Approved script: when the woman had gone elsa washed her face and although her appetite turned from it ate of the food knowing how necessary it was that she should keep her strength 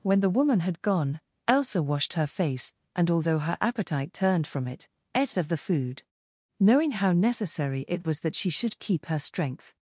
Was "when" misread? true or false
false